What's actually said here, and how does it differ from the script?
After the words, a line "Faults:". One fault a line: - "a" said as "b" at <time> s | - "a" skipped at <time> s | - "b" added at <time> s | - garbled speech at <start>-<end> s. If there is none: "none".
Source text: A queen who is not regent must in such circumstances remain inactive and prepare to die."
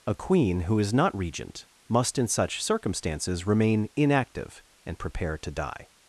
A queen who is not regent must in such circumstances remain inactive and prepare to die."
Faults:
none